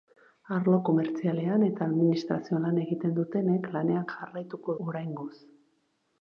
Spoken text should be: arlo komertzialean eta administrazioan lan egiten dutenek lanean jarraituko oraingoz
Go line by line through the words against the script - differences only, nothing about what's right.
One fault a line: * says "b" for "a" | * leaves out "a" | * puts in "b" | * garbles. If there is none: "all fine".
all fine